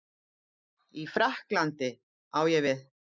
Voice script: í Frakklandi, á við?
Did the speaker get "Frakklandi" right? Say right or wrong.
right